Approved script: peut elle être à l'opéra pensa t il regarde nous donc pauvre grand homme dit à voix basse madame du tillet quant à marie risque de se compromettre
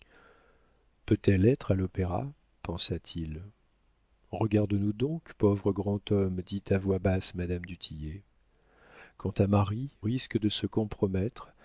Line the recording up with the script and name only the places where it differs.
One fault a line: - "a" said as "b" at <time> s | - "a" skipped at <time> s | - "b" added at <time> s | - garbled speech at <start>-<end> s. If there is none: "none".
none